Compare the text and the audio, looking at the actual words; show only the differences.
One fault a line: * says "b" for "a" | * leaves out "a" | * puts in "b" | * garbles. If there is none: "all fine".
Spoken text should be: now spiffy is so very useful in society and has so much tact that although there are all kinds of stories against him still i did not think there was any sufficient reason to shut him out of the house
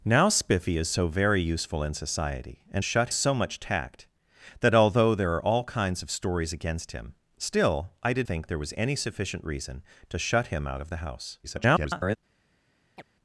* says "shut" for "has"
* leaves out "not"
* garbles